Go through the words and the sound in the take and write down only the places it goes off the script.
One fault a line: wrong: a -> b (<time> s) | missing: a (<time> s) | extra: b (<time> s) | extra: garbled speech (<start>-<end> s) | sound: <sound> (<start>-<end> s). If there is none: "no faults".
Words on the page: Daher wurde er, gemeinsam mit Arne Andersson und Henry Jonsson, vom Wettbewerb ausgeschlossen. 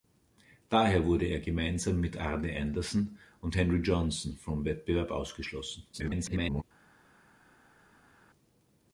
extra: garbled speech (5.9-6.6 s)